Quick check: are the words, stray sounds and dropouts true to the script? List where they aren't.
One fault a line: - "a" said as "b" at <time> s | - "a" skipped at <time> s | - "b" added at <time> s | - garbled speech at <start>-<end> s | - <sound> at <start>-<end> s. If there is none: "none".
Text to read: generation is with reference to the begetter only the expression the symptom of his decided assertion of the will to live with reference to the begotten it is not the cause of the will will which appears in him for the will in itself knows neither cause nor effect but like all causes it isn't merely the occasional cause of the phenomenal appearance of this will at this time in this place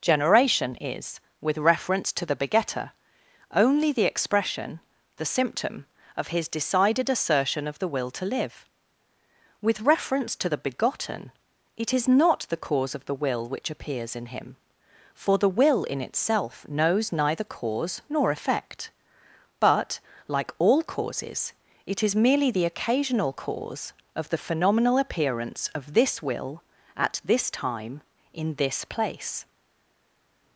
- "will" skipped at 13.5 s
- "isn't" said as "is" at 22.0 s